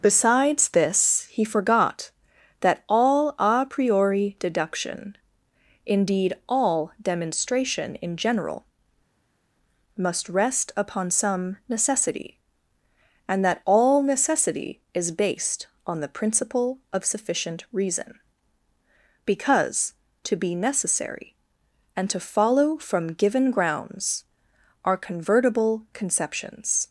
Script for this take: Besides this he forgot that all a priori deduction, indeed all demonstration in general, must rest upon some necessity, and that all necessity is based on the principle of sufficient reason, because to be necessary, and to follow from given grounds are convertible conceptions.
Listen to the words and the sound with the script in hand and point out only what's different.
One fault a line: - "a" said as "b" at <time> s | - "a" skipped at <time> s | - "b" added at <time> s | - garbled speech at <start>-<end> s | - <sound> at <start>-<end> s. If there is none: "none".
none